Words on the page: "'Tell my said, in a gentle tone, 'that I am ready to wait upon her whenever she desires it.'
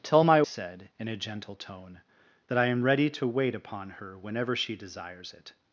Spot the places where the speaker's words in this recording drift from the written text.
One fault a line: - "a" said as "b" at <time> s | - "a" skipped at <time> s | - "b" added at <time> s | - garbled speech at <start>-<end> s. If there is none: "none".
none